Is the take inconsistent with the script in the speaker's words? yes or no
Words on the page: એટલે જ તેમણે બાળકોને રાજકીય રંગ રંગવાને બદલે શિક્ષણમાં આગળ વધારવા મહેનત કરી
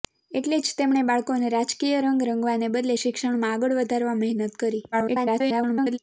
yes